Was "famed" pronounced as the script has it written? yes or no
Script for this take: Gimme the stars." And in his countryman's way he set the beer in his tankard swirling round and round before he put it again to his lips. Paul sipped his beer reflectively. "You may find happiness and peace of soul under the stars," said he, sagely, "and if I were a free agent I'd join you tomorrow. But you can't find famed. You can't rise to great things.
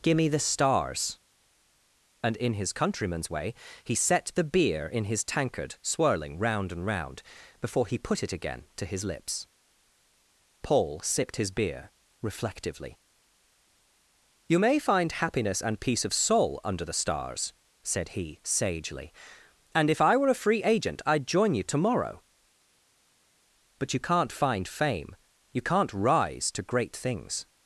no